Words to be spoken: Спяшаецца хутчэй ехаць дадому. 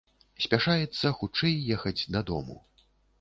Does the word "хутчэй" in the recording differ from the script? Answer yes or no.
no